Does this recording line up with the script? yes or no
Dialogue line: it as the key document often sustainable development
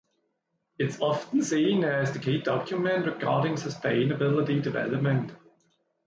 no